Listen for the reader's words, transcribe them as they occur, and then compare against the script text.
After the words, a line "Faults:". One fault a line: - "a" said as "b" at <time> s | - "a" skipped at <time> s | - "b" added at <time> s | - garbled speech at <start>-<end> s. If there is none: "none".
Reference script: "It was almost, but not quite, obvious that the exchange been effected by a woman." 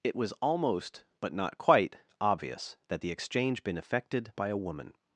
"It was almost, but not quite, obvious that the exchange been effected by a woman."
Faults:
none